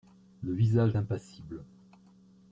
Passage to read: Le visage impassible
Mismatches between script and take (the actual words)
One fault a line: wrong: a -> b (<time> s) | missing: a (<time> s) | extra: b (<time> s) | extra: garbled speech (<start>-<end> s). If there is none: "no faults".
no faults